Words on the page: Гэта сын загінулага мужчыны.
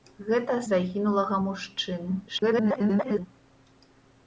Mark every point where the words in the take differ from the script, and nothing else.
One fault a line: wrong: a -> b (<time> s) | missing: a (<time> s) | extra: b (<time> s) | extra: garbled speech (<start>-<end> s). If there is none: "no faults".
missing: сын (0.6 s)
extra: garbled speech (2.3-3.3 s)